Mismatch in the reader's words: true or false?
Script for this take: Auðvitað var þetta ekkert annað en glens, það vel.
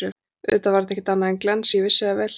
true